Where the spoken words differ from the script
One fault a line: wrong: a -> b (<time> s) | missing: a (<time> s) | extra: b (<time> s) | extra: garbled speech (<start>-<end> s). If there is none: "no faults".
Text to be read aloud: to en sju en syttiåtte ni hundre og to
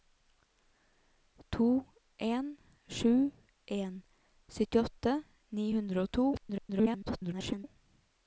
extra: garbled speech (6.3-7.6 s)